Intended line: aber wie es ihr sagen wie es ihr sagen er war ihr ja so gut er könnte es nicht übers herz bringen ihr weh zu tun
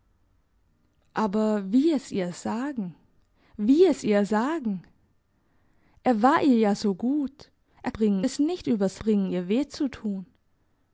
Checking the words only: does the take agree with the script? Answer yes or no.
no